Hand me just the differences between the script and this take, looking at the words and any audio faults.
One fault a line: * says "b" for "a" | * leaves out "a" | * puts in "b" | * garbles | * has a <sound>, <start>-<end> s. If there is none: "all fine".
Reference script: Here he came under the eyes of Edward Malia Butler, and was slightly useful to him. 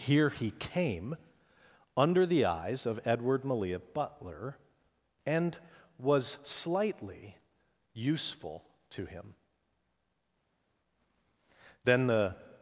* puts in "Then the"